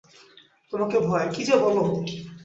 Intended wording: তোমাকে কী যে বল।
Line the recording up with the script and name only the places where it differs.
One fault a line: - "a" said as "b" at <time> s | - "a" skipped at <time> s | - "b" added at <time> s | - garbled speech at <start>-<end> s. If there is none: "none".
- "ভয়" added at 1.1 s